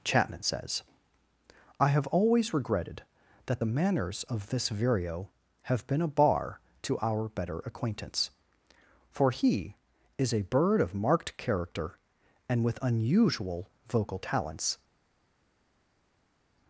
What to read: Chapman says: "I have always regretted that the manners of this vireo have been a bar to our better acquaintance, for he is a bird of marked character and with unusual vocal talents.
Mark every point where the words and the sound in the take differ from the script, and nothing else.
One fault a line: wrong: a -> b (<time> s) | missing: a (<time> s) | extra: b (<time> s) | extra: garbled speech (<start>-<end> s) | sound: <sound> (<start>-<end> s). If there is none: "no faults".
no faults